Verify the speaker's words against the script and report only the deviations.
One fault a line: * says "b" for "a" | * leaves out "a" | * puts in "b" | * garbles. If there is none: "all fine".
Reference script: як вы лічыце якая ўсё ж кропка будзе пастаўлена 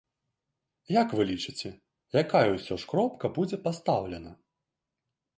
all fine